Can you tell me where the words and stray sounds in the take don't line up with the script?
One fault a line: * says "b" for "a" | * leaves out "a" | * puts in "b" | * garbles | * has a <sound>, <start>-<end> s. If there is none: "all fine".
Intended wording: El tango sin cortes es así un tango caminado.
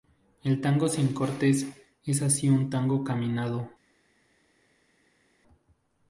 all fine